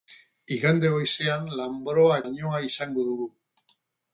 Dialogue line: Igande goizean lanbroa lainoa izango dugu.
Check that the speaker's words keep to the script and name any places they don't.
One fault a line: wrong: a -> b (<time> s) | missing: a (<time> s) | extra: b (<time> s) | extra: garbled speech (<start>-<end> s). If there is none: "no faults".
no faults